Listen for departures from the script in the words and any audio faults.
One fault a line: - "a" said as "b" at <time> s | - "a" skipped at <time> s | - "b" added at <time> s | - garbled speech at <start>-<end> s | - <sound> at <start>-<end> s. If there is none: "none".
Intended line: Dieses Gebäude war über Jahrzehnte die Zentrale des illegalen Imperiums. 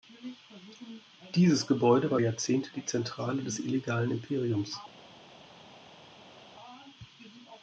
- "über" skipped at 2.2 s